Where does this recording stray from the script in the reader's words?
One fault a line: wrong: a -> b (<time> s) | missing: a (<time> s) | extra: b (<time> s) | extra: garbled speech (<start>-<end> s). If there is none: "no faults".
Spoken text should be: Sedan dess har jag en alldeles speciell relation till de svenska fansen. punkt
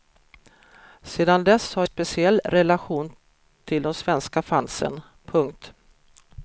missing: jag en alldeles (1.9 s)